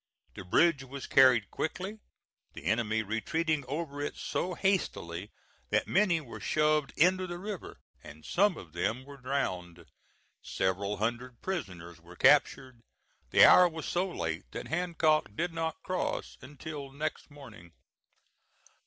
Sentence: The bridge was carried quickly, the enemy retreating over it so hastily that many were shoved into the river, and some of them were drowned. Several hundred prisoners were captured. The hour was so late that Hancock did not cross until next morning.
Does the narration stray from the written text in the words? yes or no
no